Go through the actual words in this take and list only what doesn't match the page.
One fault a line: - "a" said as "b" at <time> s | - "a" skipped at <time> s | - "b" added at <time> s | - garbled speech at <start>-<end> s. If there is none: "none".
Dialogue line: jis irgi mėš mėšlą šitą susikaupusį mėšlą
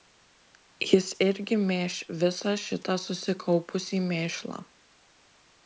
- "mėšlą" said as "visą" at 2.2 s